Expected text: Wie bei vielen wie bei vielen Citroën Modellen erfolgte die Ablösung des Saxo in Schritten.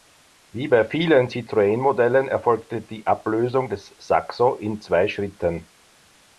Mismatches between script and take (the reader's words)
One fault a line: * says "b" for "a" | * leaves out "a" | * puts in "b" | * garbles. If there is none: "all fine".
* leaves out "wie bei vielen"
* puts in "zwei"